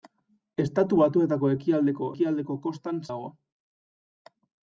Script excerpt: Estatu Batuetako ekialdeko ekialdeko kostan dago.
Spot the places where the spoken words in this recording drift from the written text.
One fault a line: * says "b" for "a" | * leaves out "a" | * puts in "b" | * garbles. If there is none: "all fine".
all fine